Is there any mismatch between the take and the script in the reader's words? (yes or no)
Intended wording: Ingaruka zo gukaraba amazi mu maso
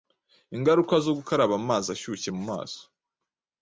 yes